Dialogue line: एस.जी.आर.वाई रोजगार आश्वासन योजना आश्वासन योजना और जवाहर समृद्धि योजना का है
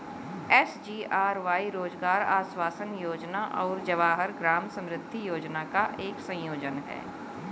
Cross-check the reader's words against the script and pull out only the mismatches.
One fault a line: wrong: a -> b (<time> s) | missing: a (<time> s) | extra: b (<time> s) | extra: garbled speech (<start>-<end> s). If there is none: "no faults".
missing: आश्वासन योजना (3.4 s)
extra: ग्राम (4.4 s)
extra: एक संयोजन (6.0 s)